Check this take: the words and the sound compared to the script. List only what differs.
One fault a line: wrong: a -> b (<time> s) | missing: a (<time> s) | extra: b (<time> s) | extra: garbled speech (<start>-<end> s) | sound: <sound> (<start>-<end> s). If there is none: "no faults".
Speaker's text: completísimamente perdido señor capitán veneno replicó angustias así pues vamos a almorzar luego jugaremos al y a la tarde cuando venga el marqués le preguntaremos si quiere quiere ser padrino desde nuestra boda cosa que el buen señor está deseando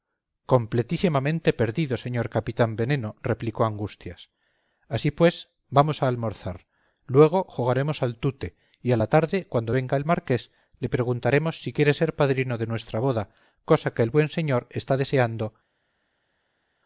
extra: tute (8.2 s)
missing: quiere (11.9 s)
wrong: desde -> de (12.6 s)